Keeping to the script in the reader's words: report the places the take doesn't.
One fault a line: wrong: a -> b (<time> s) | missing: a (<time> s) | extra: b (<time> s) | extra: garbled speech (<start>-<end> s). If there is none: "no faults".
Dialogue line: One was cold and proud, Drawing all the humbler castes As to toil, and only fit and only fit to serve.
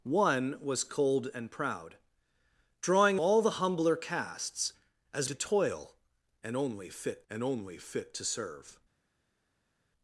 no faults